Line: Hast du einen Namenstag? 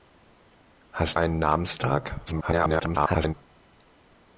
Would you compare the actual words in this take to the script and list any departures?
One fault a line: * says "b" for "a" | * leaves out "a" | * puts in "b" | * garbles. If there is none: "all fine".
* leaves out "du"
* garbles